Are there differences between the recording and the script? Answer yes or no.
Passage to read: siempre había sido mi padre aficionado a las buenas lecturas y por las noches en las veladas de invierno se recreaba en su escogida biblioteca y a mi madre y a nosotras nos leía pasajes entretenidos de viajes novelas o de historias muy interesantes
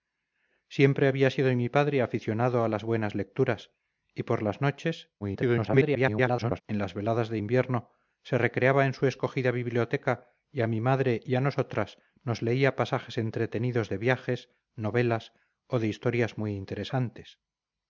yes